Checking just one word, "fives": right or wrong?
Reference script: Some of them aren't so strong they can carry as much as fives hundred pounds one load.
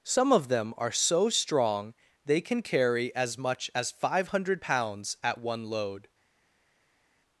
wrong